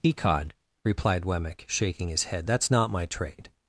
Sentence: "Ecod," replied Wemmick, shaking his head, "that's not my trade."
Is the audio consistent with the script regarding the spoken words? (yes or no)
yes